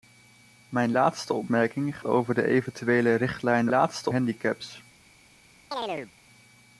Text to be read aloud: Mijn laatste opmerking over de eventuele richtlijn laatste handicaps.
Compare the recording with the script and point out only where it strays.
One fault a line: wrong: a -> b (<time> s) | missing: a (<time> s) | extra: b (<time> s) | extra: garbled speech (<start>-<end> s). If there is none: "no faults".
no faults